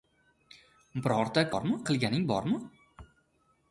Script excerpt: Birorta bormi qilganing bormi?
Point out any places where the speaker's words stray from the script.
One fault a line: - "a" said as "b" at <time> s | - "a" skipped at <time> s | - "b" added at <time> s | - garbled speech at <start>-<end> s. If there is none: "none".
none